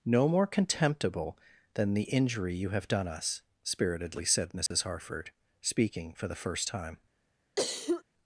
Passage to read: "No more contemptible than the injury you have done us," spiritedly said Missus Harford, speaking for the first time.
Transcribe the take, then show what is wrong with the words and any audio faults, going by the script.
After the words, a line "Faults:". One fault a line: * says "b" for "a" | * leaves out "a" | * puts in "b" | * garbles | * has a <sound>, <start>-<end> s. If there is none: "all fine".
"No more contemptible than the injury you have done us," spiritedly said Missus Harford, speaking for the first time.
Faults:
* has a dropout, 4.7-4.7 s
* has a cough, 7.6-8.0 s